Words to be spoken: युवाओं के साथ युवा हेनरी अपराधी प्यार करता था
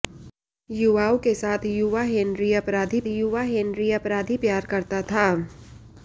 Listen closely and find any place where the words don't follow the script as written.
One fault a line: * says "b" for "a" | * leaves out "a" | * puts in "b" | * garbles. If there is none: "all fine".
* puts in "युवा हेनरी अपराधी"